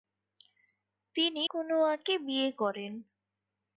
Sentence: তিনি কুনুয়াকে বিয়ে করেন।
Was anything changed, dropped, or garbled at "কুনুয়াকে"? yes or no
no